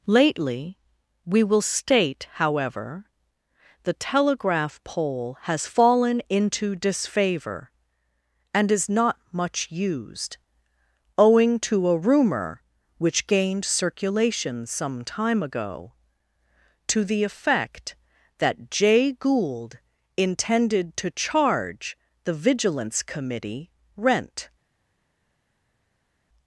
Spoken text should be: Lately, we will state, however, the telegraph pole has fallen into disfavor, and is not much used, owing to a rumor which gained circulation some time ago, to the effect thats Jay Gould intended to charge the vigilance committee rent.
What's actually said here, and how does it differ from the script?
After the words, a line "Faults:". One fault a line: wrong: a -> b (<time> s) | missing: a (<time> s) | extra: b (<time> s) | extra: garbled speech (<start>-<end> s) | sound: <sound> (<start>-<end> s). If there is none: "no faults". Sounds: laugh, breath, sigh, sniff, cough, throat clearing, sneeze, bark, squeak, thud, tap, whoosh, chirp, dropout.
Lately, we will state, however, the telegraph pole has fallen into disfavor, and is not much used, owing to a rumor which gained circulation some time ago, to the effect that Jay Gould intended to charge the vigilance committee rent.
Faults:
wrong: thats -> that (18.4 s)